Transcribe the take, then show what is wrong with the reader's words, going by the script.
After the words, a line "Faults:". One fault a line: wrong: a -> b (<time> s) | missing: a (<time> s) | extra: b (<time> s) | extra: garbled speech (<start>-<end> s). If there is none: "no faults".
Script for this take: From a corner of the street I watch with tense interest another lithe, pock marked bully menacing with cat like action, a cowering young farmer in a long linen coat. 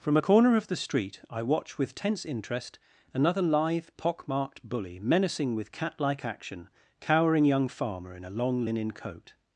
From a corner of the street I watch with tense interest another lithe, pock marked bully menacing with cat like action, cowering young farmer in a long linen coat.
Faults:
missing: a (6.7 s)